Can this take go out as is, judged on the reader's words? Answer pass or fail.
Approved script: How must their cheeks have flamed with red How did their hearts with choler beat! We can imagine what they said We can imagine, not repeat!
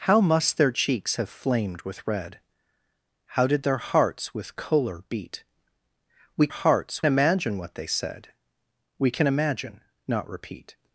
fail